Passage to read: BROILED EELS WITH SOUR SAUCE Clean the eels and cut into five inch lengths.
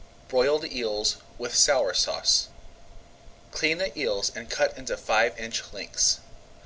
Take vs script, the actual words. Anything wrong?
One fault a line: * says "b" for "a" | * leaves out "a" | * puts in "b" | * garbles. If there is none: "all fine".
all fine